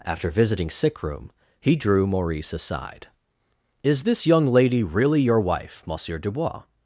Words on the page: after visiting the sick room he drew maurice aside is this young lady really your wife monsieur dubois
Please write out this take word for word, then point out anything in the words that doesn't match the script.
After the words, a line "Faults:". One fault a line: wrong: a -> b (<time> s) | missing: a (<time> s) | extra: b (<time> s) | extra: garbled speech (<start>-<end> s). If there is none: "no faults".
after visiting sick room he drew maurice aside is this young lady really your wife monsieur dubois
Faults:
missing: the (0.7 s)